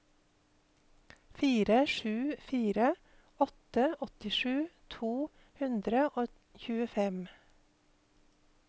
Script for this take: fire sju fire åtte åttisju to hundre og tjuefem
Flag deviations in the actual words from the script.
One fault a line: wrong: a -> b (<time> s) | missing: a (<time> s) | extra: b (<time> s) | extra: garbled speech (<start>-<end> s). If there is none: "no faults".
no faults